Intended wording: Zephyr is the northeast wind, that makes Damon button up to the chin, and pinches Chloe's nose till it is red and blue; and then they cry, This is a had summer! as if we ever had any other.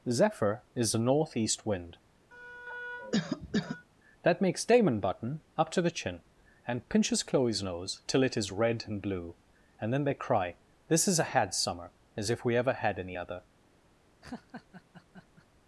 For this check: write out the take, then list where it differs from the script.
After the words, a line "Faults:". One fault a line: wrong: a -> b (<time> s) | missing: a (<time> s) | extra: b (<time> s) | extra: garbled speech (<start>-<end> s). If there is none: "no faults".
Zephyr is the northeast wind, that makes Damon button up to the chin, and pinches Chloe's nose till it is red and blue; and then they cry, This is a had summer! as if we ever had any other.
Faults:
no faults